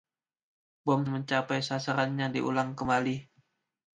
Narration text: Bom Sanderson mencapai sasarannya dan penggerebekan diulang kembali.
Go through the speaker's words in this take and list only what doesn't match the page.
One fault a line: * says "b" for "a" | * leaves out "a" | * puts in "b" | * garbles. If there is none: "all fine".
* leaves out "Sanderson"
* leaves out "dan penggerebekan"